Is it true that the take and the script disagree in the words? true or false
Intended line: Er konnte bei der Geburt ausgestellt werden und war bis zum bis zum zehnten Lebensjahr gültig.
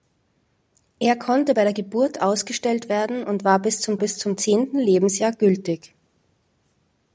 false